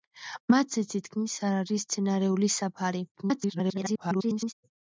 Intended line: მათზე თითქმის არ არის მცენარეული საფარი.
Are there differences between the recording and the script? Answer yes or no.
yes